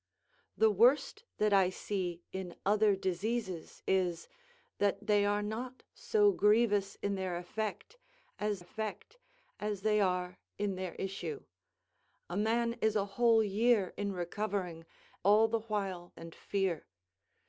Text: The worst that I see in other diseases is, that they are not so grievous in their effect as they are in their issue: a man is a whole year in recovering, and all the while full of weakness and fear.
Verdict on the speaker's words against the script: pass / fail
fail